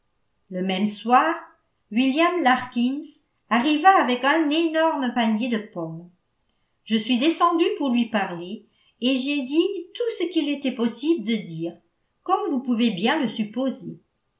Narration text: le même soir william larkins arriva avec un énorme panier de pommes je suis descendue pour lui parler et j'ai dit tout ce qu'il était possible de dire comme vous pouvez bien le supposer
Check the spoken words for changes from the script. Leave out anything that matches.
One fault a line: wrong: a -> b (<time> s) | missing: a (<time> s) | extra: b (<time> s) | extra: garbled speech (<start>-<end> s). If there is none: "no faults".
no faults